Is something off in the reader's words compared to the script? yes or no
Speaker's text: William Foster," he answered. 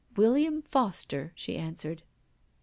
yes